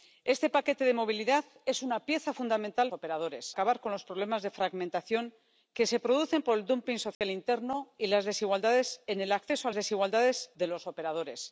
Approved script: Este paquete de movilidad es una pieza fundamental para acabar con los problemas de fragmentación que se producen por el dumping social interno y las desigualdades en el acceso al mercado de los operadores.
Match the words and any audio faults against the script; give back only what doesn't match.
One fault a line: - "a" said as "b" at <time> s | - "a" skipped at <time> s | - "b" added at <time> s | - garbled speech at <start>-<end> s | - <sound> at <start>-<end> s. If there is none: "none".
- "para" said as "operadores" at 2.9 s
- dropout at 7.1-7.2 s
- "mercado" said as "desigualdades" at 9.7 s